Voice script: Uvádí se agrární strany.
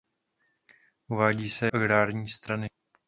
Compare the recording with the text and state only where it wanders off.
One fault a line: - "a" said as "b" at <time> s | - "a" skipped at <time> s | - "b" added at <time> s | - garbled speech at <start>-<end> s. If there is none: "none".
none